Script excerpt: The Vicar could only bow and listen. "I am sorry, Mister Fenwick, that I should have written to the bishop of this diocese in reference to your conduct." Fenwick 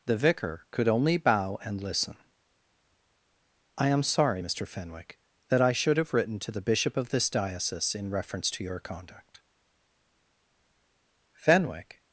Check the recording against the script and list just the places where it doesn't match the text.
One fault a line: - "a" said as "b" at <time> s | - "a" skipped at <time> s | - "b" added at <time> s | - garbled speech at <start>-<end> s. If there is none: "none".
none